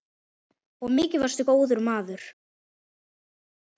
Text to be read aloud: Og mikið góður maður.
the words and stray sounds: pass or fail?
fail